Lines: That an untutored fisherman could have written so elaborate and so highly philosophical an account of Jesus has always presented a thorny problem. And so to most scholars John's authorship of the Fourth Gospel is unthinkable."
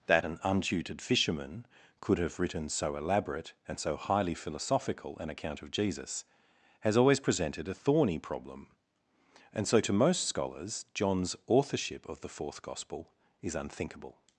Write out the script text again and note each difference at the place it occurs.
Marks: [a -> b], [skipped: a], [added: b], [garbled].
That an untutored fisherman could have written so elaborate and so highly philosophical an account of Jesus has always presented a thorny problem. And so to most scholars John's authorship of the Fourth Gospel is unthinkable."